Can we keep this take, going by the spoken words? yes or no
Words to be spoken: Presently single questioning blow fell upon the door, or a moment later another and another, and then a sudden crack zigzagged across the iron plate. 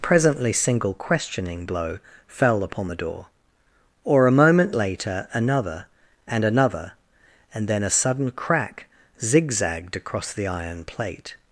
yes